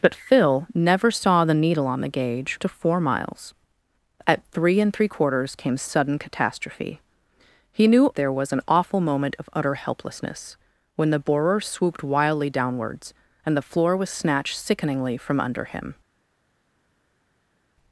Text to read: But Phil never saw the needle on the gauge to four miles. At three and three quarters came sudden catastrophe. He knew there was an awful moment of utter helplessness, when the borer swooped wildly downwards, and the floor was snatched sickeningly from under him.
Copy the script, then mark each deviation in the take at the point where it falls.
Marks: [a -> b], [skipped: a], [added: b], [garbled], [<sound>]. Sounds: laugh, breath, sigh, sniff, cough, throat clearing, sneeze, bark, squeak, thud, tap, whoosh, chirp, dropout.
But Phil never saw the needle on the gauge to four miles. At three and three quarters came sudden catastrophe. He knew there was an awful moment of utter helplessness, when the borer swooped wildly downwards, and the floor was snatched sickeningly from under him.